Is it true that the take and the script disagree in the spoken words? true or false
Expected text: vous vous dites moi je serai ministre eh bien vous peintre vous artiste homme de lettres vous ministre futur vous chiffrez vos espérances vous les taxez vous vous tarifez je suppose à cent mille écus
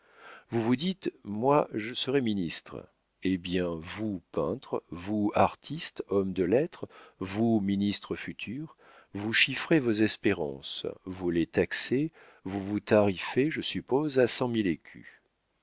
false